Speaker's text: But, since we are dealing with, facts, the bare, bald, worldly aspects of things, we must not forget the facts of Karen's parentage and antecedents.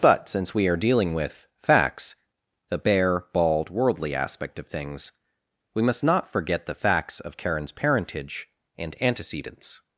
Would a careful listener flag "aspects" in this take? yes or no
yes